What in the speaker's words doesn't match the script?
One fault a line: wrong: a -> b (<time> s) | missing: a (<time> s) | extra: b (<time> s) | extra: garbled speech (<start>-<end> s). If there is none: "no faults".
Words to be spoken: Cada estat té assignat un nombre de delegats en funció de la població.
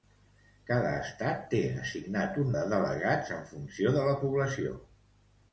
missing: nombre (2.5 s)